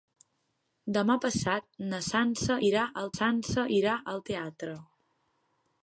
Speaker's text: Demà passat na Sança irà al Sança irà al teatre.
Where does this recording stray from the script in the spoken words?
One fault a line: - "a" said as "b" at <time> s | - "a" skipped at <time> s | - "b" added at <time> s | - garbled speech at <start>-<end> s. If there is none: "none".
none